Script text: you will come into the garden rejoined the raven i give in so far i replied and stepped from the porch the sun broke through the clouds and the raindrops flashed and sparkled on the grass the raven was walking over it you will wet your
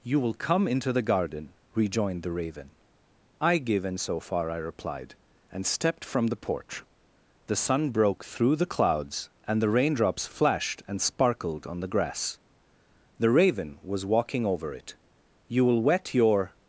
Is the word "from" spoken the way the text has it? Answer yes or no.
yes